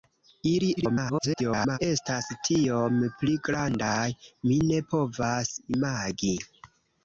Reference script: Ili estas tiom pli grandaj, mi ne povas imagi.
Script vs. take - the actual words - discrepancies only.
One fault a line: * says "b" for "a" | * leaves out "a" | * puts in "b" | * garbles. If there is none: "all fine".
* garbles